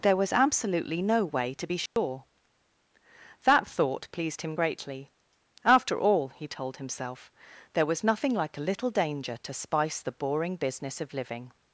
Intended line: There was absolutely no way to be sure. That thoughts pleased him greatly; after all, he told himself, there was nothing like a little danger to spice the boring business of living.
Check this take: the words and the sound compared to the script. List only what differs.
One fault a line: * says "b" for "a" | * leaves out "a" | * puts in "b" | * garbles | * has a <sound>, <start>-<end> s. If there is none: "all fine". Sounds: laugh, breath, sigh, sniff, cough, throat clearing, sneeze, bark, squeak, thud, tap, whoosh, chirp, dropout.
* has a dropout, 1.9-2.0 s
* says "thought" for "thoughts"